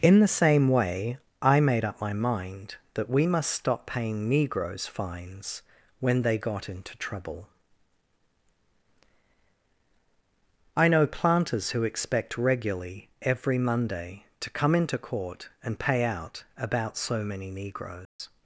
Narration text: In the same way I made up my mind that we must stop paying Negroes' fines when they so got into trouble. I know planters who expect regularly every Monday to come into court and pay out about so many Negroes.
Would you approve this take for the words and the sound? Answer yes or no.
no